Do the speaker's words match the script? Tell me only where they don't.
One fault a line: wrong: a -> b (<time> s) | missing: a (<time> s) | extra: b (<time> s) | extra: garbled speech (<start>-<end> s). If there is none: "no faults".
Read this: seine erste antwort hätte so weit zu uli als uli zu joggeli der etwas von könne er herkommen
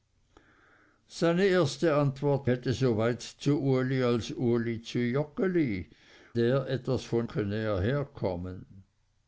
no faults